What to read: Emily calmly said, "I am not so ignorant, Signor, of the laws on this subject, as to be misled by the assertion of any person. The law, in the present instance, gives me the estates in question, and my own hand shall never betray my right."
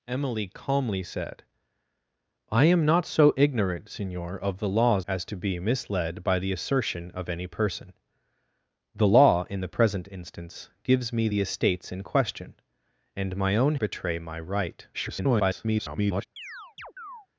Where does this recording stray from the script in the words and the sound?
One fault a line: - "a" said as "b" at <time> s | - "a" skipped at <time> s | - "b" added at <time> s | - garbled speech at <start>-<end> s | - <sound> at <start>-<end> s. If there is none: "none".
- "on this subject" skipped at 5.0 s
- "hand shall never" skipped at 13.7 s
- garbled speech at 14.9-16.3 s
- chirp at 16.4-17.3 s